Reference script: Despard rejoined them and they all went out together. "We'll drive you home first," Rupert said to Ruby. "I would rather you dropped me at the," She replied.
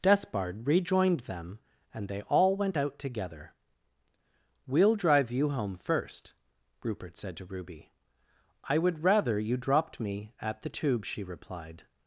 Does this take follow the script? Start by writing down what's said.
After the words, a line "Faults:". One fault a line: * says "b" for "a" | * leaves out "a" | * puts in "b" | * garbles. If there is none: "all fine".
Despard rejoined them and they all went out together. "We'll drive you home first," Rupert said to Ruby. "I would rather you dropped me at the Tube," she replied.
Faults:
* puts in "Tube"